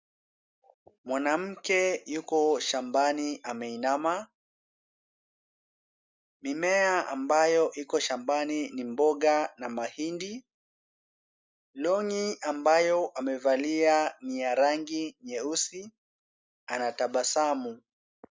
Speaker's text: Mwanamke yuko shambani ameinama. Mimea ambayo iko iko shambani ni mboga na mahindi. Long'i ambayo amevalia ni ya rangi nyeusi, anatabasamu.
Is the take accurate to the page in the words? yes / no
no